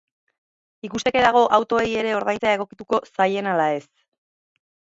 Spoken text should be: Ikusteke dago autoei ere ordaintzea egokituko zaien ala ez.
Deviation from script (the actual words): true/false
false